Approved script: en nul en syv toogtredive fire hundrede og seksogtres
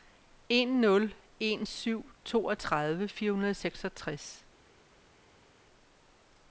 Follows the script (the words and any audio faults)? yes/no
yes